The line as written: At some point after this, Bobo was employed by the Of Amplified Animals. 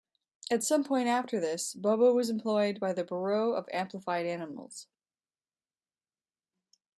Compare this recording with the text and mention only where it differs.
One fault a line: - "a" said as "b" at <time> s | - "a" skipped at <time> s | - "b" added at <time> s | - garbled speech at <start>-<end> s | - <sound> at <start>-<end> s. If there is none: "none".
- "Bureau" added at 3.0 s